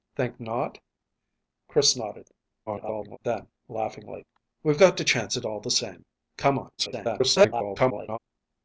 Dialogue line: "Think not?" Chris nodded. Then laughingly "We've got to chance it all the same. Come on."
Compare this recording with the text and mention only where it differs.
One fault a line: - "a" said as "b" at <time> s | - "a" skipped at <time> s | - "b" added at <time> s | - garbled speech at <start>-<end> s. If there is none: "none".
- garbled speech at 2.7-3.2 s
- garbled speech at 6.8-8.2 s